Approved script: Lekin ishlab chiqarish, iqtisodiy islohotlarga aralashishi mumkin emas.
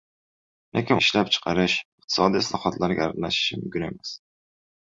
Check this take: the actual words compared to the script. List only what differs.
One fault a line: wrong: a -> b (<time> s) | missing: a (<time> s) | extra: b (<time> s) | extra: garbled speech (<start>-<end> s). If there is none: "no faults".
no faults